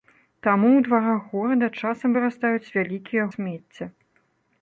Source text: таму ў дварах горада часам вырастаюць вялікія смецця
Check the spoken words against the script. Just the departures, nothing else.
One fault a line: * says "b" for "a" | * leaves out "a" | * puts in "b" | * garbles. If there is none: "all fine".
all fine